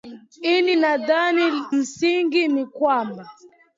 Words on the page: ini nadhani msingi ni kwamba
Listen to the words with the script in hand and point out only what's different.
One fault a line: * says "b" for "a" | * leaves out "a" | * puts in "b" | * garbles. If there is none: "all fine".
all fine